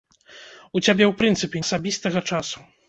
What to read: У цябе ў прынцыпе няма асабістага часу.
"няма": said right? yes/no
no